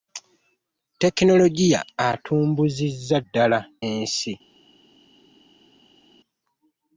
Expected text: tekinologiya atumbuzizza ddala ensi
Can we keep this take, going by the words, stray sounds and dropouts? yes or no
yes